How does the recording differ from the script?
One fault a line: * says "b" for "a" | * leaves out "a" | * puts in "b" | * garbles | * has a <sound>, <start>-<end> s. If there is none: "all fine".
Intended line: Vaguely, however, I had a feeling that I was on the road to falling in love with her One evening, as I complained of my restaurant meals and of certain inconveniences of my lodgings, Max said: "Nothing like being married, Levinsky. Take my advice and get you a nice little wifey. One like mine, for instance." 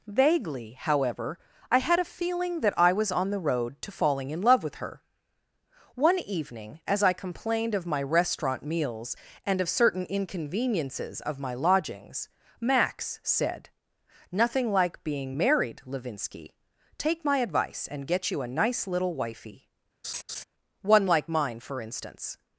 * has a laugh, 20.0-20.4 s